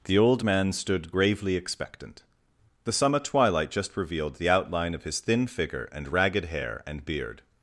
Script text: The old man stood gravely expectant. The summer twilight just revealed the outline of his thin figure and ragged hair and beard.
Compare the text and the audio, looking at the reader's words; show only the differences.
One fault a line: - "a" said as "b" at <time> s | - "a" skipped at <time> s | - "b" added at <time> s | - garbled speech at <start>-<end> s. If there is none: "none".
none